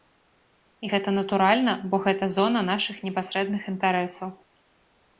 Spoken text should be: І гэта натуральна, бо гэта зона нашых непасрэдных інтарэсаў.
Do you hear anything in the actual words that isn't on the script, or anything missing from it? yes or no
no